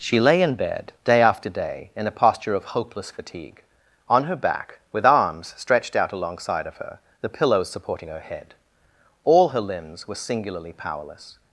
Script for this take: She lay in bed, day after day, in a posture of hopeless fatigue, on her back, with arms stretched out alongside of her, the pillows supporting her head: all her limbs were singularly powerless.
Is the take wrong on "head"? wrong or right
right